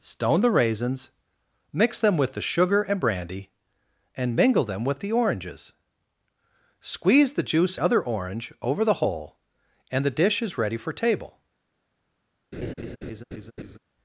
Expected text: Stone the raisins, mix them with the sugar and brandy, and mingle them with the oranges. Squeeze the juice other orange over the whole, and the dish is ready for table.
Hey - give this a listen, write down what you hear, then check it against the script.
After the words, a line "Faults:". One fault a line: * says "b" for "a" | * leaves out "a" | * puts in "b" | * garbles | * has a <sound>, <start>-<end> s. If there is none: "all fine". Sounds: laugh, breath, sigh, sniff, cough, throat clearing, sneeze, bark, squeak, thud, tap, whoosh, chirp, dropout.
Stone the raisins, mix them with the sugar and brandy, and mingle them with the oranges. Squeeze the juice other orange over the whole, and the dish is ready for table.
Faults:
* has a laugh, 12.5-13.8 s